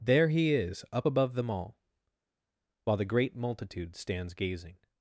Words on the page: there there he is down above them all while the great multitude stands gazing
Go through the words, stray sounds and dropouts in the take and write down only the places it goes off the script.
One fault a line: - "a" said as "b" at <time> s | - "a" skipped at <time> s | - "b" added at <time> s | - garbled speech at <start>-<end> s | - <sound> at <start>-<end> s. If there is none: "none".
- "there" skipped at 0.3 s
- "down" said as "up" at 0.9 s